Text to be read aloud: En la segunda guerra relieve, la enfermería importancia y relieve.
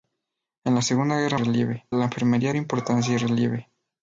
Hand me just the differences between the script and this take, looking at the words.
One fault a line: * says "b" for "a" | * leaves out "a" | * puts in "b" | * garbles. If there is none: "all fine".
all fine